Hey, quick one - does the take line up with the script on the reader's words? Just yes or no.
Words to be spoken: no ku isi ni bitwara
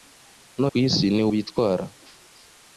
yes